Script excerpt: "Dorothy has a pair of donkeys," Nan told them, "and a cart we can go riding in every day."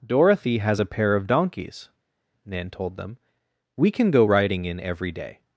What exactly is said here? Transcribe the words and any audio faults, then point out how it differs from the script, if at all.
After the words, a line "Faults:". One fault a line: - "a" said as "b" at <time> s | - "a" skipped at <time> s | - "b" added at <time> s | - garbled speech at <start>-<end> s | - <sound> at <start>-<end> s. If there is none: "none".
"Dorothy has a pair of donkeys," Nan told them, "we can go riding in every day."
Faults:
- "and a cart" skipped at 3.2 s